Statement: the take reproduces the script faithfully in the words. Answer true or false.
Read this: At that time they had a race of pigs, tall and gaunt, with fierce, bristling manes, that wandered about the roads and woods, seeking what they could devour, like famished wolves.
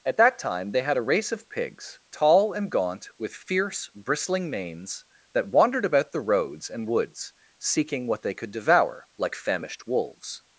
true